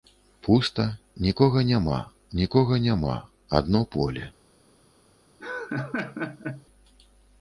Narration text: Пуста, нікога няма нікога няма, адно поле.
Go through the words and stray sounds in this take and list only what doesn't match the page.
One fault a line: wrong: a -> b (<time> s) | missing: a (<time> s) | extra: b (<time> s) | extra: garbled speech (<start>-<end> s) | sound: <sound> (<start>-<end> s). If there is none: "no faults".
sound: laugh (5.4-6.7 s)